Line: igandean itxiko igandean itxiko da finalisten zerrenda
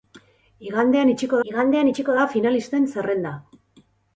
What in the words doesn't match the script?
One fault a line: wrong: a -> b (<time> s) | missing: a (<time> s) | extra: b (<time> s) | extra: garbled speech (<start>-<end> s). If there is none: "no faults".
no faults